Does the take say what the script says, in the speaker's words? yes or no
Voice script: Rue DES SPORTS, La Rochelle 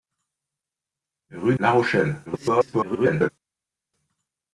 no